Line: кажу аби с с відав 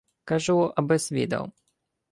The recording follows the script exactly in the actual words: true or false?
false